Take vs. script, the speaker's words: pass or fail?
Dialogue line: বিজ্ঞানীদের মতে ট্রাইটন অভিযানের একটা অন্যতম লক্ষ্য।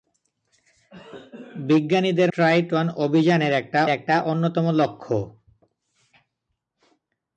fail